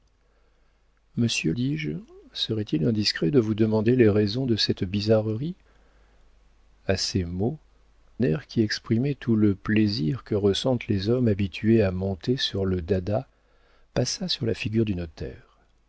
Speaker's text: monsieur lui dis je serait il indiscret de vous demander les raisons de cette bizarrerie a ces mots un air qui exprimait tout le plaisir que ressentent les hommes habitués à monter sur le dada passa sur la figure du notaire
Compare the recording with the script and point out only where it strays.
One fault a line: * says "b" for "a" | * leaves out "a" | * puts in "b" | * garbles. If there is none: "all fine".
* leaves out "lui"
* leaves out "un"